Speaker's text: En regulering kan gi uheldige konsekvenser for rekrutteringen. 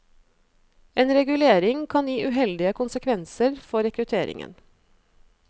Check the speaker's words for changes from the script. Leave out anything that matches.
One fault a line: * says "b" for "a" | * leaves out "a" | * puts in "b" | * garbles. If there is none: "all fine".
all fine